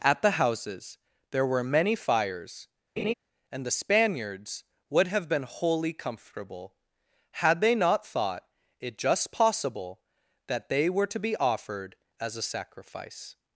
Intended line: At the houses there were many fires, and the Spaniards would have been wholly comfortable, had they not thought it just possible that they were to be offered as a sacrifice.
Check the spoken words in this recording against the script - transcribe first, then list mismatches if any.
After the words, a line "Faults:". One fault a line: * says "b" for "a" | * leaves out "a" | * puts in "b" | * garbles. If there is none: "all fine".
At the houses there were many fires, and the Spaniards would have been wholly comfortable, had they not thought it just possible that they were to be offered as a sacrifice.
Faults:
all fine